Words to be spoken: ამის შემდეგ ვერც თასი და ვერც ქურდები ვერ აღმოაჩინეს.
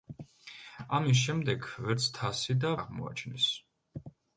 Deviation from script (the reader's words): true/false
true